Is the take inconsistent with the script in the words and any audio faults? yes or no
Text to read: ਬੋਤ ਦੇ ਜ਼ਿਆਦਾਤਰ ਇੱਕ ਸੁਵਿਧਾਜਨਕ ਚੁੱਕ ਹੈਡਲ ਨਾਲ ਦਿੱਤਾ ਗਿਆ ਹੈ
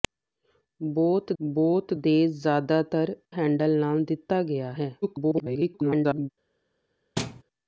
yes